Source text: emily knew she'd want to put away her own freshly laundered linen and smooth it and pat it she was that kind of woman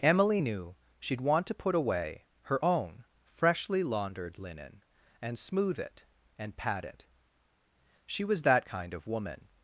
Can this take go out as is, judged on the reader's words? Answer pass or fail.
pass